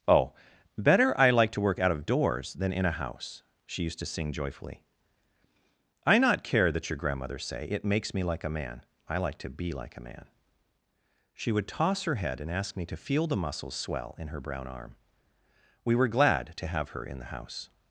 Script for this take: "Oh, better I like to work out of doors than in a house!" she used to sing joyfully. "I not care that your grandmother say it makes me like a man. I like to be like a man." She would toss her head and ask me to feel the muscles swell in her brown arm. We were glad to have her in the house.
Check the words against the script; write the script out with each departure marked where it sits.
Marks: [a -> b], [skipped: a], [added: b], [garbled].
"Oh, better I like to work out of doors than in a house!" she used to sing joyfully. "I not care that your grandmother say it makes me like a man. I like to be like a man." She would toss her head and ask me to feel the muscles swell in her brown arm. We were glad to have her in the house.